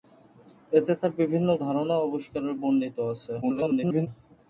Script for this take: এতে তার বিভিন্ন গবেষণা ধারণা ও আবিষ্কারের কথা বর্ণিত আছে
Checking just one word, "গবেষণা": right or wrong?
wrong